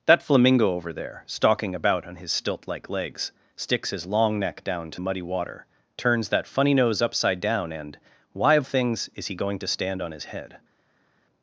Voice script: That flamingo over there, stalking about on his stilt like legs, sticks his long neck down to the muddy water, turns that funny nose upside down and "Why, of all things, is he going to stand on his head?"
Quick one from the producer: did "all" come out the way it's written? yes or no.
no